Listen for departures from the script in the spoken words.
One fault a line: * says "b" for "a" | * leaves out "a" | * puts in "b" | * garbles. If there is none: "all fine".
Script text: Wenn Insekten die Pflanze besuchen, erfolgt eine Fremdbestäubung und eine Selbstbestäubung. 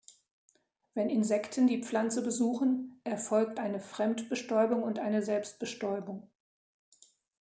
all fine